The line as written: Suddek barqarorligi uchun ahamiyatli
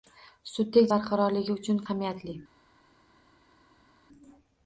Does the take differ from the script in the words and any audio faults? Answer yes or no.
no